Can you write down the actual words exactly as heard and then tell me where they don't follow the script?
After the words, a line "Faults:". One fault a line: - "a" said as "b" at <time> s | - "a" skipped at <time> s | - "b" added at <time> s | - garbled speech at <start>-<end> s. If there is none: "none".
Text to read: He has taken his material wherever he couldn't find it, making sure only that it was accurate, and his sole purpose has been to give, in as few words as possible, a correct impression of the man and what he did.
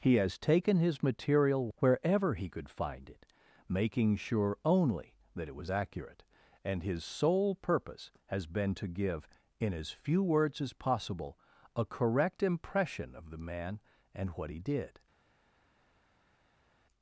He has taken his material wherever he could find it, making sure only that it was accurate, and his sole purpose has been to give, in as few words as possible, a correct impression of the man and what he did.
Faults:
- "couldn't" said as "could" at 2.5 s